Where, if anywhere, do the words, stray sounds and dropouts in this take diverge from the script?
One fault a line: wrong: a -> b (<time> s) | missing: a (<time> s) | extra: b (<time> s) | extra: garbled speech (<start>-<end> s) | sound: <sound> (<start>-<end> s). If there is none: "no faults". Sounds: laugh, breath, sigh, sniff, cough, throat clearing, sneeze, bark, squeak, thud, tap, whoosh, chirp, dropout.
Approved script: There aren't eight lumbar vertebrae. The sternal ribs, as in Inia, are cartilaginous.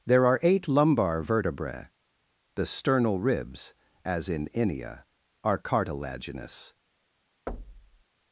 wrong: aren't -> are (0.2 s)
sound: thud (7.5-8.0 s)